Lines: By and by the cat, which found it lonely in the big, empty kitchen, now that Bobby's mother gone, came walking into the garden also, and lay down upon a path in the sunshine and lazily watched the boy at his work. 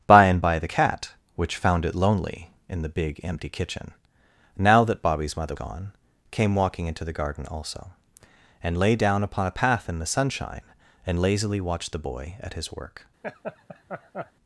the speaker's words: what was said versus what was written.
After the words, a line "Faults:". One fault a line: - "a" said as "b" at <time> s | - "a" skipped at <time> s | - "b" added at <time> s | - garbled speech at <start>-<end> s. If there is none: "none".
By and by the cat, which found it lonely in the big, empty kitchen, now that Bobby's mother gone, came walking into the garden also, and lay down upon a path in the sunshine and lazily watched the boy at his work.
Faults:
none